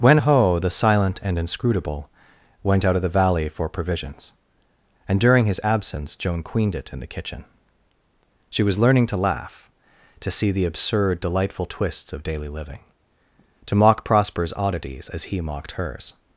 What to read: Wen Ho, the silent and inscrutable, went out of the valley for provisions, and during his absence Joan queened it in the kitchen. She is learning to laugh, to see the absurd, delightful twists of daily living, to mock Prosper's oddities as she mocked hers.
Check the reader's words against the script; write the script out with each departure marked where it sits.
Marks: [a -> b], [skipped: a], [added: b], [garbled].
Wen Ho, the silent and inscrutable, went out of the valley for provisions, and during his absence Joan queened it in the kitchen. She [is -> was] learning to laugh, to see the absurd, delightful twists of daily living, to mock Prosper's oddities as [she -> he] mocked hers.